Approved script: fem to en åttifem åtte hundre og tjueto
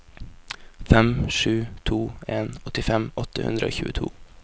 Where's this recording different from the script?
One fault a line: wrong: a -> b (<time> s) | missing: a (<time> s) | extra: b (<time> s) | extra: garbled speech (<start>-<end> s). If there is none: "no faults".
extra: sju (1.3 s)